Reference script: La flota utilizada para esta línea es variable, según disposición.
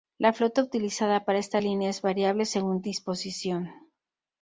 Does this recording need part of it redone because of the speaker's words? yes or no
no